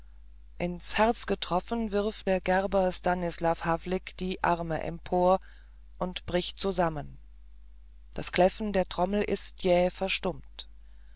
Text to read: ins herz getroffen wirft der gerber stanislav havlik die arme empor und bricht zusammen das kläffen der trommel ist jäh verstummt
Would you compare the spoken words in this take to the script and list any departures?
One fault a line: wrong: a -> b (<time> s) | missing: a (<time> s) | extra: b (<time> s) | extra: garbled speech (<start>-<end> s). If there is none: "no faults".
no faults